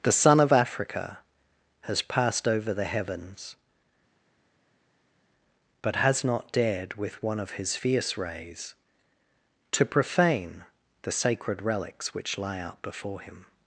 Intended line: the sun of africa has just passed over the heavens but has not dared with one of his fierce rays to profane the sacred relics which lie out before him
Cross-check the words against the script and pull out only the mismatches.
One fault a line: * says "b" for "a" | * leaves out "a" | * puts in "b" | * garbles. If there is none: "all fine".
* leaves out "just"